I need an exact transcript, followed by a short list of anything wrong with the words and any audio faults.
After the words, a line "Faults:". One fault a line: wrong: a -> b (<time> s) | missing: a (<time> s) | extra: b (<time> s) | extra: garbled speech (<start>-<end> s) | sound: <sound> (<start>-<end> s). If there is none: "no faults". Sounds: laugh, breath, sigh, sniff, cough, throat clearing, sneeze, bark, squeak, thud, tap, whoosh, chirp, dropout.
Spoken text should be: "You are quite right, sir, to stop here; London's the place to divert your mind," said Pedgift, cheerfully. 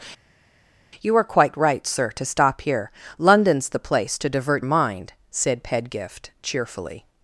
"You are quite right, sir, to stop here; London's the place to divert mind," said Pedgift, cheerfully.
Faults:
missing: your (4.6 s)